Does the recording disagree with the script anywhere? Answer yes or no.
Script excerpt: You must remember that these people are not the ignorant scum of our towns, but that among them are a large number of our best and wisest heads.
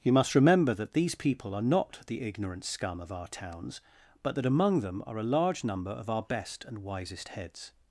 no